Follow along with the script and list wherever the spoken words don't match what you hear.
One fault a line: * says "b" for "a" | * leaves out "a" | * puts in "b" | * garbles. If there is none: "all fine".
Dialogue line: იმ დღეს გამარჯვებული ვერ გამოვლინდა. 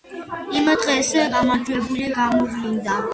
* leaves out "ვერ"